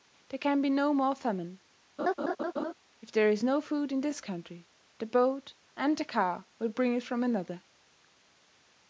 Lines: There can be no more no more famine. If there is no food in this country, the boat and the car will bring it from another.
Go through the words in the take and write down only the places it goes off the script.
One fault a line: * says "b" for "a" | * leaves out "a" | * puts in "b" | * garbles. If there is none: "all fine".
* leaves out "no more"